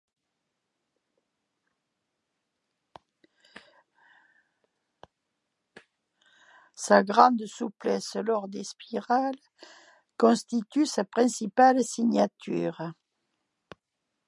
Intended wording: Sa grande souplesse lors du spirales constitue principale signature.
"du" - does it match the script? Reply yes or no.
no